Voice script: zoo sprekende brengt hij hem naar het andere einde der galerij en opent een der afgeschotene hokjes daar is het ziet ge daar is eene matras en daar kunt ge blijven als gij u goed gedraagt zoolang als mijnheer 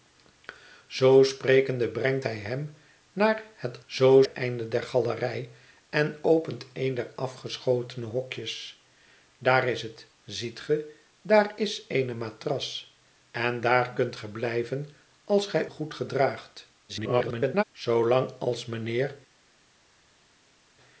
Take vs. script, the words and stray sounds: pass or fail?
fail